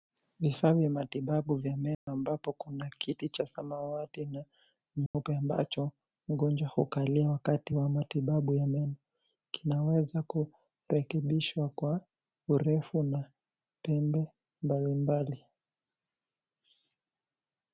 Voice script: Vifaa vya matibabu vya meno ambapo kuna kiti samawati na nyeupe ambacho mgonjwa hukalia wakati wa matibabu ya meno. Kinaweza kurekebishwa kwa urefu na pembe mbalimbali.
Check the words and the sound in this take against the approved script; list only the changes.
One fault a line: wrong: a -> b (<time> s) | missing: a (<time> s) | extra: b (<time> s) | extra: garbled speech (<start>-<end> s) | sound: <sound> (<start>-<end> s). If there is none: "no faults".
sound: dropout (1.9-2.1 s)
extra: cha (3.3 s)
sound: dropout (5.1-5.1 s)